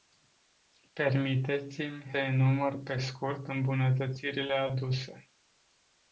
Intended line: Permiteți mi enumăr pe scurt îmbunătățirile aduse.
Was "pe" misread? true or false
false